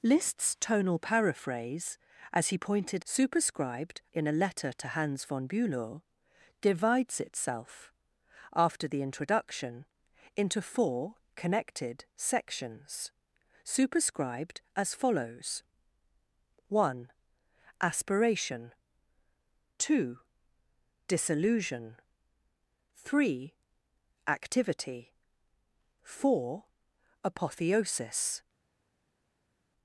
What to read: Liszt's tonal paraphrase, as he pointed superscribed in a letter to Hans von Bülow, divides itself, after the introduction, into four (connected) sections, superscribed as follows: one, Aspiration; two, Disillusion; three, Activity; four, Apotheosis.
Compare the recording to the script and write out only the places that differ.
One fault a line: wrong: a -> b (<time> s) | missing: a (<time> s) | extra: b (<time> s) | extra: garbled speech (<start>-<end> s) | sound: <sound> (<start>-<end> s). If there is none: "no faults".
no faults